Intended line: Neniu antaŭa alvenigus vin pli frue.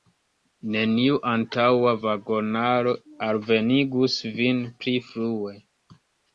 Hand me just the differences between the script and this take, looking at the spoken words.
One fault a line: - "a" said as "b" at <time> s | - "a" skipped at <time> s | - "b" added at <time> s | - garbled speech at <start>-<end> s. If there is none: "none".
- "vagonaro" added at 2.0 s